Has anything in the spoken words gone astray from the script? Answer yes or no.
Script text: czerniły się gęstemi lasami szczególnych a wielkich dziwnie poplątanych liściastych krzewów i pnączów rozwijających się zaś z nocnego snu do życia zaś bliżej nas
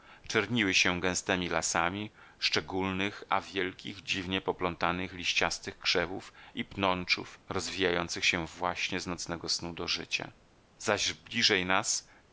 yes